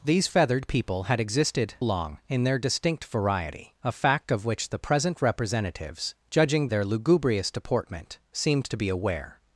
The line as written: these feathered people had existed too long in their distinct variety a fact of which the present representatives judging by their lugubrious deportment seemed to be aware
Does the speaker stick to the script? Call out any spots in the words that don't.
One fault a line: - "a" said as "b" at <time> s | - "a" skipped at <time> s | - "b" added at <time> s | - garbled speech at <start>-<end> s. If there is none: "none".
- "too" skipped at 1.8 s
- "by" skipped at 6.7 s